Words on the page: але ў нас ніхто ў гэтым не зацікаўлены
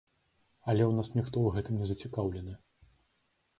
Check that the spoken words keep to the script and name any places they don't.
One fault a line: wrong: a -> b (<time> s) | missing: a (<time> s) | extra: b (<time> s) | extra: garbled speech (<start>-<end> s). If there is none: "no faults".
no faults